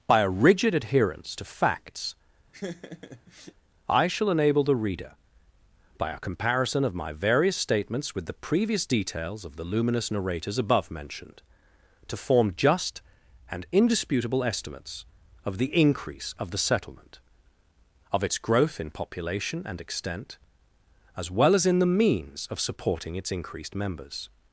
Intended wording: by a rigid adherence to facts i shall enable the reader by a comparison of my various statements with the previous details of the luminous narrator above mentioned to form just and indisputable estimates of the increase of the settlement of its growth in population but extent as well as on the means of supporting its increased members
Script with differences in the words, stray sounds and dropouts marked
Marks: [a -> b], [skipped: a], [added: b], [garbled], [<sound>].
by a rigid adherence to facts [laugh] i shall enable the reader by a comparison of my various statements with the previous details of the luminous [narrator -> narrators] above mentioned to form just and indisputable estimates of the increase of the settlement of its growth in population [but -> and] extent as well as [on -> in] the means of supporting its increased members